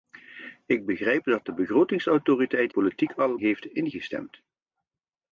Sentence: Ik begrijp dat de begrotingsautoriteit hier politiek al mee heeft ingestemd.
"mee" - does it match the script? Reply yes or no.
no